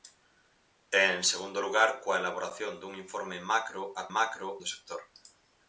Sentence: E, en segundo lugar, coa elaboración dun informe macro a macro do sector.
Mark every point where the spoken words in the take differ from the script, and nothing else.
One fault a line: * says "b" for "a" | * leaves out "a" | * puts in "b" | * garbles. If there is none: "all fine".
all fine